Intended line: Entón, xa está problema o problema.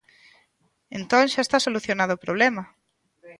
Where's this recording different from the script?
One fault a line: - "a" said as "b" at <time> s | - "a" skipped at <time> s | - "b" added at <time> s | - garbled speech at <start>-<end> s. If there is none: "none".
- "problema" said as "solucionado" at 1.6 s